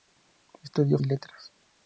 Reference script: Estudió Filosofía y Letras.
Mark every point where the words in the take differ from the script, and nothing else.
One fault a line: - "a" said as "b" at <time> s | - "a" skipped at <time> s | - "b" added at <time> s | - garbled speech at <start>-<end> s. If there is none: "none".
- "Filosofía" skipped at 1.0 s